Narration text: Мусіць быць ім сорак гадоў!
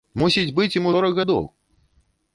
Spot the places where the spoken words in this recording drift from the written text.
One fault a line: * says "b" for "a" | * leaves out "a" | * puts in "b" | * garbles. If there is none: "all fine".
all fine